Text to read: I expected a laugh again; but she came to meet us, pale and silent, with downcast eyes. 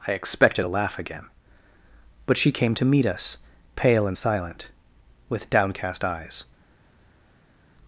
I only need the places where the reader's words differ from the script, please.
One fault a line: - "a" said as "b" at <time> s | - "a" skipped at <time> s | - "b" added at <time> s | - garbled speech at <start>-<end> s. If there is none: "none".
none